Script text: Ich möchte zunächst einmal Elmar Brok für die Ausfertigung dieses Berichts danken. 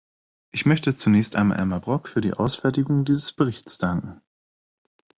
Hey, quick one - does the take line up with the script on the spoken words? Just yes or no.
yes